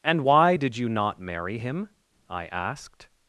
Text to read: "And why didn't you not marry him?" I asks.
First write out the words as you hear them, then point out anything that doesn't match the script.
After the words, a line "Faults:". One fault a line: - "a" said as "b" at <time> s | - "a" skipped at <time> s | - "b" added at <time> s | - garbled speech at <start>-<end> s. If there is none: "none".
"And why did you not marry him?" I asked.
Faults:
- "didn't" said as "did" at 0.5 s
- "asks" said as "asked" at 2.5 s